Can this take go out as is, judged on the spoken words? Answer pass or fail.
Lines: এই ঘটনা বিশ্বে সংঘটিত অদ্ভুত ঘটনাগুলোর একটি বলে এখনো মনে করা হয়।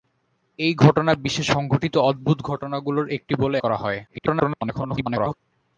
fail